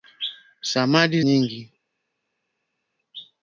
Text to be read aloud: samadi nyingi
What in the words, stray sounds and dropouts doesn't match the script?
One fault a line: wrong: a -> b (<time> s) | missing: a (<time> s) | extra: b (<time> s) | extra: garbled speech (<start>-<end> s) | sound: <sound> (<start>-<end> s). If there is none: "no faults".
no faults